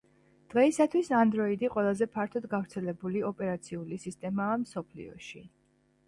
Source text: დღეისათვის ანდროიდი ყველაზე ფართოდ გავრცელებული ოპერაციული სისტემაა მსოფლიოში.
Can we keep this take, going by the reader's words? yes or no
yes